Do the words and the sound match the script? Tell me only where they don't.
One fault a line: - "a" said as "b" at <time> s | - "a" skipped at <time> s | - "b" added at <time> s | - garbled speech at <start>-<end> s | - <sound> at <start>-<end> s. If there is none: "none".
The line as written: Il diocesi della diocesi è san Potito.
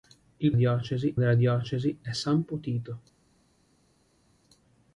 none